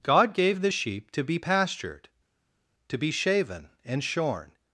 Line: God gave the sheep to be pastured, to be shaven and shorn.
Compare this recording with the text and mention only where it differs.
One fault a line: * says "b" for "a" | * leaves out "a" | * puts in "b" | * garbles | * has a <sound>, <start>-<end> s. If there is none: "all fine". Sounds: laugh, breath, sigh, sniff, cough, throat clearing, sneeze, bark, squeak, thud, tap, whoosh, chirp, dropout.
all fine